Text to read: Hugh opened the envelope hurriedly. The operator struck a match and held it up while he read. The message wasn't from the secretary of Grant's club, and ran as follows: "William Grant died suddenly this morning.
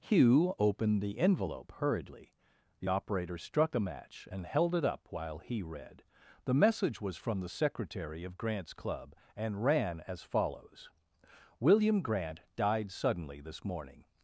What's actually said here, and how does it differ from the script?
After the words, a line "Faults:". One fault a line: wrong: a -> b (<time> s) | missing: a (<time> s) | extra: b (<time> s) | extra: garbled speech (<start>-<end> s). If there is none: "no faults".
Hugh opened the envelope hurriedly. The operator struck a match and held it up while he read. The message was from the secretary of Grant's club, and ran as follows: "William Grant died suddenly this morning.
Faults:
wrong: wasn't -> was (7.0 s)